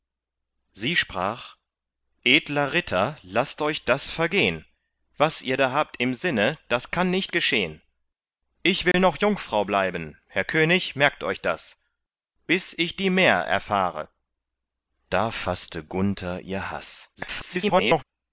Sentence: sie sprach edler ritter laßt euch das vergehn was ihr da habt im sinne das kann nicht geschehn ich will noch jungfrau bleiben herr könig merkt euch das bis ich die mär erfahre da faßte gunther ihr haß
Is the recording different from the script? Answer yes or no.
yes